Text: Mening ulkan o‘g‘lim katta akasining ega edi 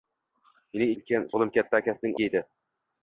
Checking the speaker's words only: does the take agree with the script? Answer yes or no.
yes